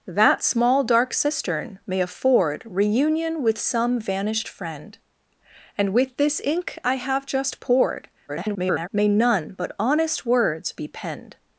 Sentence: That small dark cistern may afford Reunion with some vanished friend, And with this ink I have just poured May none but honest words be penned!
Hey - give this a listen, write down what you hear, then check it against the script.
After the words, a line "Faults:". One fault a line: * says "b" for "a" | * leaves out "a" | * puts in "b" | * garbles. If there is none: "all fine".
That small dark cistern may afford Reunion with some vanished friend, And with this ink I have just poured [garbled] May none but honest words be penned!
Faults:
* garbles